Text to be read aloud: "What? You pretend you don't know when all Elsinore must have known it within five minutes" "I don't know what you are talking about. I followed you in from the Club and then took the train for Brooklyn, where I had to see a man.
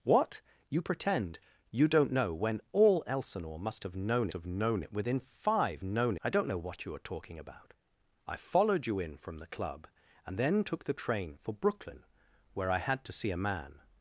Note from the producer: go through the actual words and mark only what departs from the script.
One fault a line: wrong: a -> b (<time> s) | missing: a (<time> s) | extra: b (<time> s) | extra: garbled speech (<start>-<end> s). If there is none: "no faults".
extra: have known (4.3 s)
wrong: minutes -> known (5.8 s)